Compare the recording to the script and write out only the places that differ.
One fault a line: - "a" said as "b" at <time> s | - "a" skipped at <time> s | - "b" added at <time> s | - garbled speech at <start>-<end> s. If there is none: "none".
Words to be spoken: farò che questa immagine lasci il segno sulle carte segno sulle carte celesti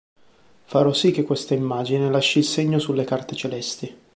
- "sì" added at 0.9 s
- "segno sulle carte" skipped at 3.4 s